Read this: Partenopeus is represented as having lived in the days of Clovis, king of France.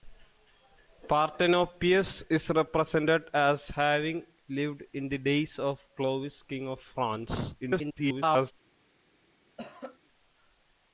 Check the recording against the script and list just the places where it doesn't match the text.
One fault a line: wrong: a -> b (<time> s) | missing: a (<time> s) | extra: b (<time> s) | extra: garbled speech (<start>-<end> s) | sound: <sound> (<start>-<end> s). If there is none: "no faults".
extra: garbled speech (7.6-8.5 s)
sound: cough (9.6-10.0 s)